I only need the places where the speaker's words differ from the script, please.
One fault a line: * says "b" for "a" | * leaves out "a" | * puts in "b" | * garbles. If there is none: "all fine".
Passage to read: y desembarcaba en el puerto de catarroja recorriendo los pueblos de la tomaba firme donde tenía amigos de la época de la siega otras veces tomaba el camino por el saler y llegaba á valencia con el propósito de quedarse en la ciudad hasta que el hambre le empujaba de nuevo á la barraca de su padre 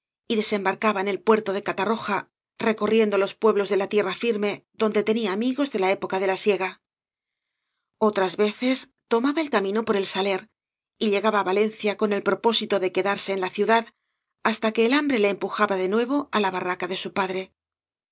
* says "tierra" for "tomaba"